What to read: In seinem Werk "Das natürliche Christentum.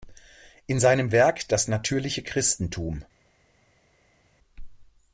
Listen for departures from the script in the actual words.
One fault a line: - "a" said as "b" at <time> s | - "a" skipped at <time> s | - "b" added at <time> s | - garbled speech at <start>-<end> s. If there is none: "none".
none